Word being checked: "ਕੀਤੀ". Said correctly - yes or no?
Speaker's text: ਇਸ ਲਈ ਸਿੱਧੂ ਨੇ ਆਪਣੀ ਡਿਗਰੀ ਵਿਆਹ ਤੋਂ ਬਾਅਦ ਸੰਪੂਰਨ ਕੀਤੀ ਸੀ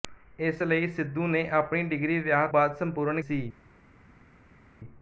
no